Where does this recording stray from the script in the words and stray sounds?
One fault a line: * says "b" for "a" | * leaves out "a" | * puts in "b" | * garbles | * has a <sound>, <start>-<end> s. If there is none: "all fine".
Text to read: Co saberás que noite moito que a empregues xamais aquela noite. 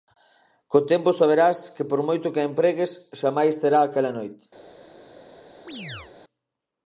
* puts in "tempo"
* says "por" for "noite"
* puts in "será"
* has a chirp, 5.7-6.1 s